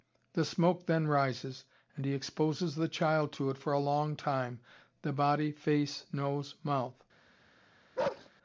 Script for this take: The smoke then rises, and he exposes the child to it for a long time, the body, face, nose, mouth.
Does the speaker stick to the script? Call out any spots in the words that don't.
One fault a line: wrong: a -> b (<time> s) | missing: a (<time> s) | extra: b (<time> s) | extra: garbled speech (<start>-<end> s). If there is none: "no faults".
no faults